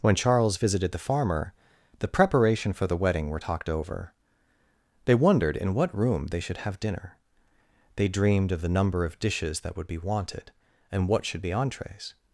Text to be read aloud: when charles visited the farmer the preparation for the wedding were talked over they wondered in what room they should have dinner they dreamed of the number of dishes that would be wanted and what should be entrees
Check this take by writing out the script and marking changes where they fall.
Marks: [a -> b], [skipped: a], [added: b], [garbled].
when charles visited the farmer the preparation for the wedding were talked over they wondered in what room they should have dinner they dreamed of the number of dishes that would be wanted and what should be entrees